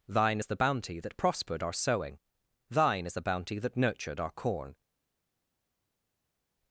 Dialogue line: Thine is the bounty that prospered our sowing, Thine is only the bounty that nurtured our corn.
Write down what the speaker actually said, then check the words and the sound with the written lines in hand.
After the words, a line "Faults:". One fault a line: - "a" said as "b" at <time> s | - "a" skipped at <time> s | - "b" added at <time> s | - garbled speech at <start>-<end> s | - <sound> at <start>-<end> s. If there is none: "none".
Thine is the bounty that prospered our sowing, Thine is the bounty that nurtured our corn.
Faults:
- "only" skipped at 3.2 s